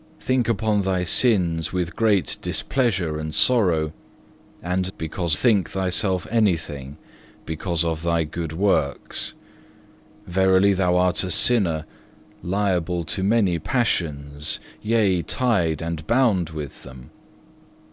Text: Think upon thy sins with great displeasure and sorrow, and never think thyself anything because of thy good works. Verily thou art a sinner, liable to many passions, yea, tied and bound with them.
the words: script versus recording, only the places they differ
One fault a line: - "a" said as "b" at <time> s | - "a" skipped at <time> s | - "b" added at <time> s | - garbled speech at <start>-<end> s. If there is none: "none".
- "never" said as "because" at 5.0 s